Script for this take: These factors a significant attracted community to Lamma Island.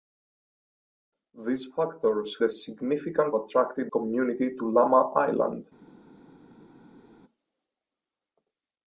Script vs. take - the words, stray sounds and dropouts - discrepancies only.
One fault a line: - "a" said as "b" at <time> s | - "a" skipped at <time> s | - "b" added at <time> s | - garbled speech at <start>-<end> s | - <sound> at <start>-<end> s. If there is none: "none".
none